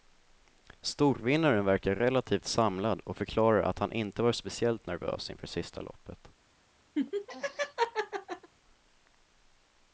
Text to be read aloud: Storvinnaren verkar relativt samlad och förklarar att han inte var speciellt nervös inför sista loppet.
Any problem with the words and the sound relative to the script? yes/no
yes